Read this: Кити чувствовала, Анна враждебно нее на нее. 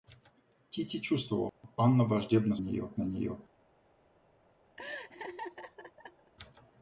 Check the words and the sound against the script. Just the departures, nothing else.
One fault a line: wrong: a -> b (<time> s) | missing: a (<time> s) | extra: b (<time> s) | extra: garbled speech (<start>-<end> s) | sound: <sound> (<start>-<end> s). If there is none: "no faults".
sound: dropout (1.5-1.6 s)
sound: laugh (4.8-6.3 s)